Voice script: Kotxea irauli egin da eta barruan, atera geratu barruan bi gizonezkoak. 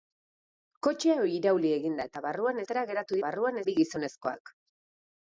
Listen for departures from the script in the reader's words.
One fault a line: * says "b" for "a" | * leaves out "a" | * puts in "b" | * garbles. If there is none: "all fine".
all fine